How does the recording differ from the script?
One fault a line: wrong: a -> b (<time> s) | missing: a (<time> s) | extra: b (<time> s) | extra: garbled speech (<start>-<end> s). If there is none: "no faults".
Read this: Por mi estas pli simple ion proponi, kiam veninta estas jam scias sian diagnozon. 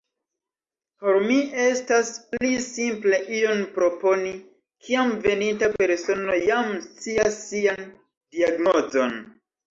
wrong: estas -> persono (5.8 s)